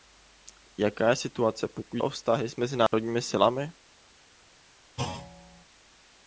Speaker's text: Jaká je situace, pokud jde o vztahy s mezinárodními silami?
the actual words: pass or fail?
fail